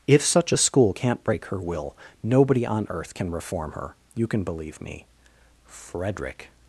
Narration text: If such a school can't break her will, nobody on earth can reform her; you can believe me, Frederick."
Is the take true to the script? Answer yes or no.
yes